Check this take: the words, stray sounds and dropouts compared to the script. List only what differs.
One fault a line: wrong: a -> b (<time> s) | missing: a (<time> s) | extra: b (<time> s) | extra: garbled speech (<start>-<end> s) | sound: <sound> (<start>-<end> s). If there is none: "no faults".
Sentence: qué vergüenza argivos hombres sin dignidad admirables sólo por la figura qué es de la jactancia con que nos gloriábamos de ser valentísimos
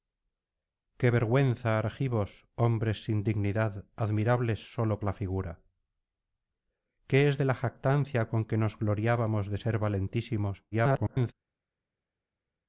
missing: por (5.0 s)
extra: garbled speech (10.7-11.3 s)